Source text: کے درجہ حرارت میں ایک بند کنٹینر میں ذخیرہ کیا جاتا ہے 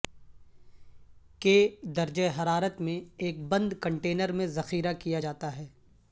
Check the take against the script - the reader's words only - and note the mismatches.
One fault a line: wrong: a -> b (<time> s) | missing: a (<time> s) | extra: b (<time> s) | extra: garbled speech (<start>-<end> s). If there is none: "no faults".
no faults